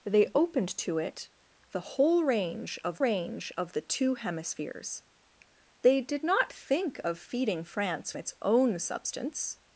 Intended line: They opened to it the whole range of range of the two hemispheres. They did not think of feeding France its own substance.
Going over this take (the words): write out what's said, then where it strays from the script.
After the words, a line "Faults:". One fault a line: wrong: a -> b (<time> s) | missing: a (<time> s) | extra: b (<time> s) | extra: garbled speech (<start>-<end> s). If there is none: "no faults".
They opened to it the whole range of range of the two hemispheres. They did not think of feeding France its own substance.
Faults:
no faults